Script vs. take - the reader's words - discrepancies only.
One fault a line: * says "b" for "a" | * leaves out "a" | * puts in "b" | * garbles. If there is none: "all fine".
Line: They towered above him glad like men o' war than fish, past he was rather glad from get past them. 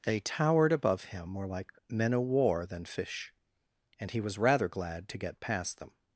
* says "more" for "glad"
* says "and" for "past"
* says "to" for "from"